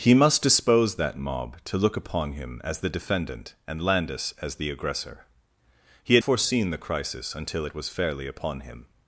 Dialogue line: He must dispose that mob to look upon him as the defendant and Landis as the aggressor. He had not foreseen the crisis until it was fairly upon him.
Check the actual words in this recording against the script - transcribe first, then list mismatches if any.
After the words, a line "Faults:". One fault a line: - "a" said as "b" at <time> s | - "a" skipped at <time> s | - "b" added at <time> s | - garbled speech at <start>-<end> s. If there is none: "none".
He must dispose that mob to look upon him as the defendant and Landis as the aggressor. He had foreseen the crisis until it was fairly upon him.
Faults:
- "not" skipped at 6.2 s